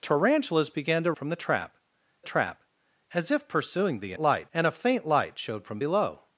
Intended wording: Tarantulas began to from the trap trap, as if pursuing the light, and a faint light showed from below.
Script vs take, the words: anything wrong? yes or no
no